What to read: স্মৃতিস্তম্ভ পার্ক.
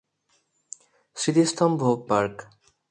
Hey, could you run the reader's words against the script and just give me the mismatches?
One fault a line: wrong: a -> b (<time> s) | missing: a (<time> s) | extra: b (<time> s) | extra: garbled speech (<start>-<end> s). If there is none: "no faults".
no faults